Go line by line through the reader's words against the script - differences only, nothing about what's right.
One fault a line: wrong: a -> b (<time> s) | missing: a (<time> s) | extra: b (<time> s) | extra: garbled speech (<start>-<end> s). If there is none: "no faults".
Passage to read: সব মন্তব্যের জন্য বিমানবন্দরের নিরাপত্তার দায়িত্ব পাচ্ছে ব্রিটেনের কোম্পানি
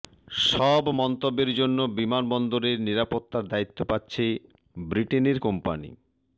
no faults